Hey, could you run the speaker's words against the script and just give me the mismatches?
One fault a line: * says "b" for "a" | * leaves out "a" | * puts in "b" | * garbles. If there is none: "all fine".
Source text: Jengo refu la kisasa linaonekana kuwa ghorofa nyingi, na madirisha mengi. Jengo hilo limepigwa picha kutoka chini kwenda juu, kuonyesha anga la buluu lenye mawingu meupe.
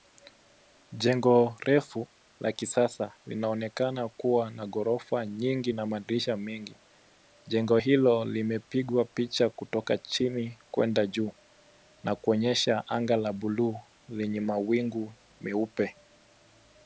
* puts in "na"
* puts in "na"